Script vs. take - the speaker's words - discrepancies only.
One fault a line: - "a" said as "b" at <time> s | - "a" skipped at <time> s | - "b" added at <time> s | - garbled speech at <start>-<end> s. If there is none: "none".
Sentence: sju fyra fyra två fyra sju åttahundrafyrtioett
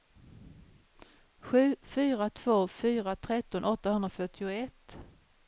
- "fyra" skipped at 2.3 s
- "sju" said as "tretton" at 3.1 s